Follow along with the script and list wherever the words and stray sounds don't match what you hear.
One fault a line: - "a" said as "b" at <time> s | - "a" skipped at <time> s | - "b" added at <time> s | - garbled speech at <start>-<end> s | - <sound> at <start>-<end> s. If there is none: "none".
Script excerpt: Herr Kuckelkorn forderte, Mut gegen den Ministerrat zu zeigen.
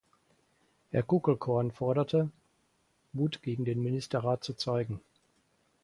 none